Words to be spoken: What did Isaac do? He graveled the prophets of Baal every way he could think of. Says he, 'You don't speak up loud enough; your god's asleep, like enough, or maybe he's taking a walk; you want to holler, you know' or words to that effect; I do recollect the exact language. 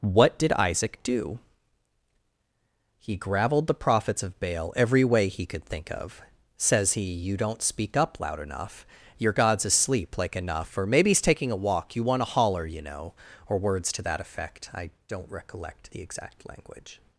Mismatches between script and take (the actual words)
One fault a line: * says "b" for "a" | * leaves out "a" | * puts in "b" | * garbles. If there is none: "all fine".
* says "don't" for "do"